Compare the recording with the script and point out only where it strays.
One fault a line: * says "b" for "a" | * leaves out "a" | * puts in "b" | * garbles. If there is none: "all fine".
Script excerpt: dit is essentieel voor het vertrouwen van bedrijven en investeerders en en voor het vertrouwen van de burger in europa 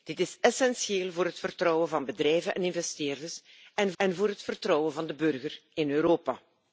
all fine